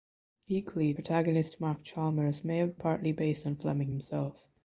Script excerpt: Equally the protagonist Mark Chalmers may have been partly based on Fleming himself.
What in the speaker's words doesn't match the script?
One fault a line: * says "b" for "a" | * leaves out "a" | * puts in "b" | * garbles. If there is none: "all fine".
* leaves out "the"
* leaves out "been"